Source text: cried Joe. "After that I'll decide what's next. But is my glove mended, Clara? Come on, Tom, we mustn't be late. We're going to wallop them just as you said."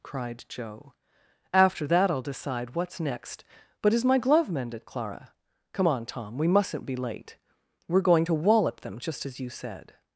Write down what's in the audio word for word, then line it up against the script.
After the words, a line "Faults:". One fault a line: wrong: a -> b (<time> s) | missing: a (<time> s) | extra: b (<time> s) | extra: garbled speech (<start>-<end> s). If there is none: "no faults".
cried Joe. "After that I'll decide what's next. But is my glove mended, Clara? Come on, Tom, we mustn't be late. We're going to wallop them just as you said."
Faults:
no faults